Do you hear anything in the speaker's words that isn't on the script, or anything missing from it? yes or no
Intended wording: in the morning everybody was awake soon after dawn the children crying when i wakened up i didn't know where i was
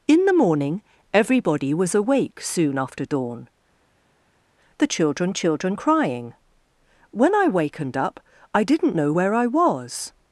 yes